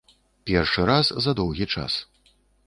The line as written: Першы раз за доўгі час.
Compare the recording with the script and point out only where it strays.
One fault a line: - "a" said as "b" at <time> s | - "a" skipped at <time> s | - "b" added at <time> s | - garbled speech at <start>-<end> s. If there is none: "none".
none